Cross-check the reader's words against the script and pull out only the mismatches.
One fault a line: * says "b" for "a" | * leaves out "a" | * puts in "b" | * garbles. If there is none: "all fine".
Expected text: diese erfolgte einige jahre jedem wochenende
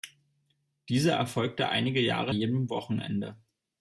all fine